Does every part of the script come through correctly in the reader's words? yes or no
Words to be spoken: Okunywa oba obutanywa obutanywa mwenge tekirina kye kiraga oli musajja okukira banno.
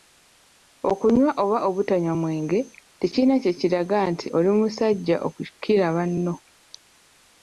no